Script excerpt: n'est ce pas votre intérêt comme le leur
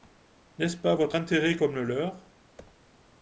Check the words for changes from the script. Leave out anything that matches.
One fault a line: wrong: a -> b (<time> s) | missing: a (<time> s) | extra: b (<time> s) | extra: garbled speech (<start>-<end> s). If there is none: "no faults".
no faults